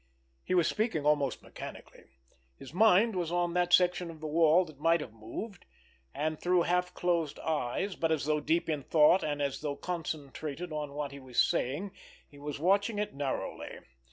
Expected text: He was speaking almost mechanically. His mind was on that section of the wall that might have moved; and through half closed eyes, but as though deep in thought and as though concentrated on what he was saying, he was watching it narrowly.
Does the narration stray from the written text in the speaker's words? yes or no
no